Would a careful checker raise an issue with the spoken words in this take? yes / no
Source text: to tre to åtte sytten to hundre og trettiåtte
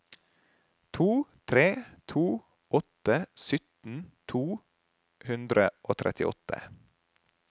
no